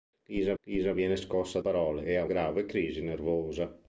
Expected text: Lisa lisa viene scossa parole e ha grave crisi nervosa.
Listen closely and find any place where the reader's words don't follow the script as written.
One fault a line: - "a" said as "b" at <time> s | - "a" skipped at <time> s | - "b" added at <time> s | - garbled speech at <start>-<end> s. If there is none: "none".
none